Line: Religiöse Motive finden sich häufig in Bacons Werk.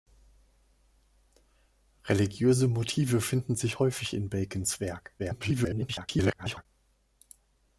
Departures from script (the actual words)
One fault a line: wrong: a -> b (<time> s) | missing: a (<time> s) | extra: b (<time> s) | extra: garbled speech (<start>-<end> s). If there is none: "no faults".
extra: garbled speech (5.2-6.7 s)